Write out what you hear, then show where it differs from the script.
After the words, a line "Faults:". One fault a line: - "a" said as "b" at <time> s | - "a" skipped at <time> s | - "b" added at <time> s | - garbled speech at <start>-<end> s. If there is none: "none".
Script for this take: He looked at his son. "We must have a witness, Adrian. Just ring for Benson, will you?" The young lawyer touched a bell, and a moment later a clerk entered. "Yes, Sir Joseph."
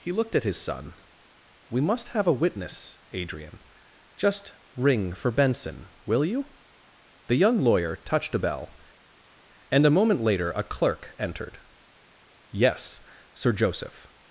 He looked at his son. "We must have a witness, Adrian. Just ring for Benson, will you?" The young lawyer touched a bell, and a moment later a clerk entered. "Yes, Sir Joseph."
Faults:
none